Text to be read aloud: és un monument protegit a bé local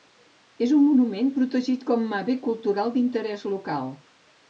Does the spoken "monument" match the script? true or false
true